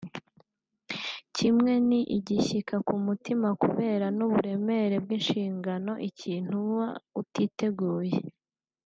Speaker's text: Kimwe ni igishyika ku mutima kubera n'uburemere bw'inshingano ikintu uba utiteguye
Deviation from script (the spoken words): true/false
false